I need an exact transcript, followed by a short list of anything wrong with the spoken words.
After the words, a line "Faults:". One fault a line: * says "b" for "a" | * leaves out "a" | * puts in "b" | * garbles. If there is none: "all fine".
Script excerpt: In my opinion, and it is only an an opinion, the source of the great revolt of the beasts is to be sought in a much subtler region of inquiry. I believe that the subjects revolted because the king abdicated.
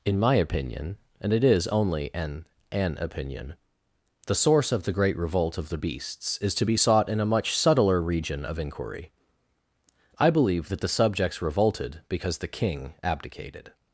In my opinion, and it is only an an opinion, the source of the great revolt of the beasts is to be sought in a much subtler region of inquiry. I believe that the subjects revolted because the king abdicated.
Faults:
all fine